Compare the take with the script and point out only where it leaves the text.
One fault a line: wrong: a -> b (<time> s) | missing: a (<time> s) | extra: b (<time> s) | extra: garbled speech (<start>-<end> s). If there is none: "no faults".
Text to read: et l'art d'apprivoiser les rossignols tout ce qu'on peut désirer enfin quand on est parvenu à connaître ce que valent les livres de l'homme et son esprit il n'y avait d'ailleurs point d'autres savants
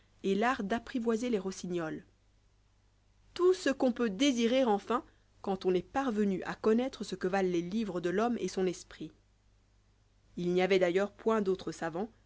no faults